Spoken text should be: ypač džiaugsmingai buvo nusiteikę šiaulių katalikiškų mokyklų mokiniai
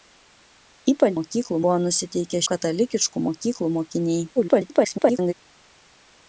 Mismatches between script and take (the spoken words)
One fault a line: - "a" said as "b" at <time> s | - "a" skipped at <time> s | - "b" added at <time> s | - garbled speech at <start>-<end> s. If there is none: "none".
- "džiaugsmingai" said as "mokyklų" at 1.2 s
- "šiaulių" skipped at 2.4 s
- garbled speech at 4.4-5.3 s